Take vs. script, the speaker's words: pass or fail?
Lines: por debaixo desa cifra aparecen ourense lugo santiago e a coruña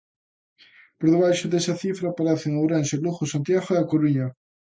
pass